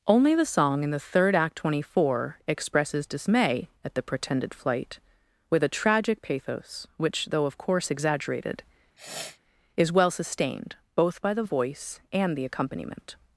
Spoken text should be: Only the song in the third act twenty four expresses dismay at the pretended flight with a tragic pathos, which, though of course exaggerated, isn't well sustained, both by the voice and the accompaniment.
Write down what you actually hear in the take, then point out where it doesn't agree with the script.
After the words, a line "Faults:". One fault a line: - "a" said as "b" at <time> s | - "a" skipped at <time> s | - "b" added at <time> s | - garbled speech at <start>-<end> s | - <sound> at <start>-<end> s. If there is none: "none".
Only the song in the third act twenty four expresses dismay at the pretended flight with a tragic pathos, which, though of course exaggerated, is well sustained, both by the voice and the accompaniment.
Faults:
- sniff at 9.0-9.4 s
- "isn't" said as "is" at 9.7 s